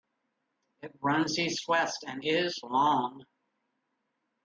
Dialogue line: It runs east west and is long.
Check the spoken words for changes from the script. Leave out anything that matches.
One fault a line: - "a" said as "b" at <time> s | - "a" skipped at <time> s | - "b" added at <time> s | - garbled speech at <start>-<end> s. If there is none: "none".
none